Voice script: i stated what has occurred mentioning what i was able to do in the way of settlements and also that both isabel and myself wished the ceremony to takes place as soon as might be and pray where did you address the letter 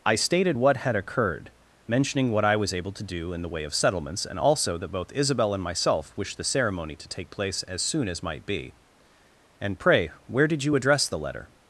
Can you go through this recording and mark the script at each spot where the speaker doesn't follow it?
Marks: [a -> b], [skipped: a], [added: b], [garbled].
i stated what [has -> had] occurred mentioning what i was able to do in the way of settlements and also that both isabel and myself wished the ceremony to [takes -> take] place as soon as might be and pray where did you address the letter